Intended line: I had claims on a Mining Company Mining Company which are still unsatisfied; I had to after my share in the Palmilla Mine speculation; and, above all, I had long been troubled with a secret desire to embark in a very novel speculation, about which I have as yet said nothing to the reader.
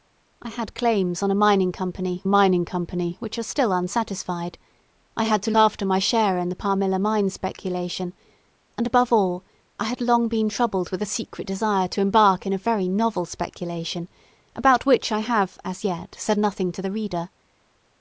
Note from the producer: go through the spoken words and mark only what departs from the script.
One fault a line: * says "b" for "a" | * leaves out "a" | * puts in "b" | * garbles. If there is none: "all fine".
all fine